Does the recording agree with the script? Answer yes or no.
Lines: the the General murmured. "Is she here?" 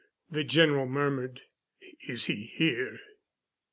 no